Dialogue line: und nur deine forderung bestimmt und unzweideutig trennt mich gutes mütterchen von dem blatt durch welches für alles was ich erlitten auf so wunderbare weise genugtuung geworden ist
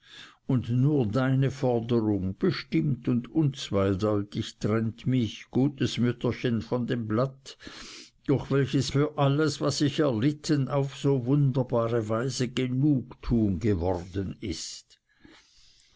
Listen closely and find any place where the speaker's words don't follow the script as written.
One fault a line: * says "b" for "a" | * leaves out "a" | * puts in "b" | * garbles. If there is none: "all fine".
all fine